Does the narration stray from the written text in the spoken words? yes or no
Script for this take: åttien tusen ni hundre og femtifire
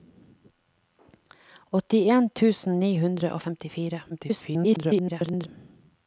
yes